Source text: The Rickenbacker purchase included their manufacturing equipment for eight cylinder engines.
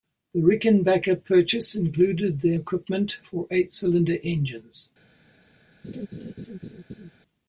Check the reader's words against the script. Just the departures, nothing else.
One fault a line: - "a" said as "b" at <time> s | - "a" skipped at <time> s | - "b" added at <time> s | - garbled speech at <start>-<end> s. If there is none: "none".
- "manufacturing" skipped at 2.6 s